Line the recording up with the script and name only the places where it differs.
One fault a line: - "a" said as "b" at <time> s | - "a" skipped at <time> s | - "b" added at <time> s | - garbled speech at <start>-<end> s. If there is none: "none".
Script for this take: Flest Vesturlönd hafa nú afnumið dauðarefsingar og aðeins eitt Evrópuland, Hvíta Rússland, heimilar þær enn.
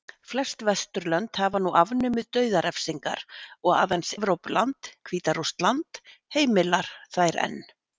- "eitt" skipped at 4.2 s